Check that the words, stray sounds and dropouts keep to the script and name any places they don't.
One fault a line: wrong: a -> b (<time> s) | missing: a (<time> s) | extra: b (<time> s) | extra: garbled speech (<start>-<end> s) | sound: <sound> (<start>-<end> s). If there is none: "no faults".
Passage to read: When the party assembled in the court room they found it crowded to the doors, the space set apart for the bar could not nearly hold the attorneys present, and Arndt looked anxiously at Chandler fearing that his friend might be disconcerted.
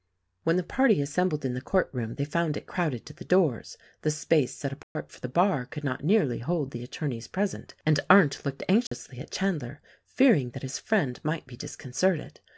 sound: dropout (4.8-5.0 s)
sound: dropout (8.9-8.9 s)